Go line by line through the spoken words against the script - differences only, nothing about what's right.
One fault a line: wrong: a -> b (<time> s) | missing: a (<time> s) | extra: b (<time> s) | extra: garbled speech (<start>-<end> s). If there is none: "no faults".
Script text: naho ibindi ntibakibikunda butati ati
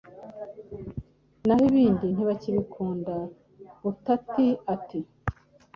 no faults